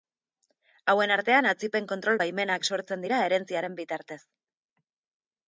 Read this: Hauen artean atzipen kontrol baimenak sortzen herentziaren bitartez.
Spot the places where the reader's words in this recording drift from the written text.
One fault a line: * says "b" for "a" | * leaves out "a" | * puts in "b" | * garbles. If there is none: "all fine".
* puts in "dira"